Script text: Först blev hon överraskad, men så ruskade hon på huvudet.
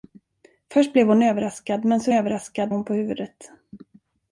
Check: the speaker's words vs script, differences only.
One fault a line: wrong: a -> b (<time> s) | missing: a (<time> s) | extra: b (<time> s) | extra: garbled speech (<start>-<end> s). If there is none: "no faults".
wrong: ruskade -> överraskad (2.1 s)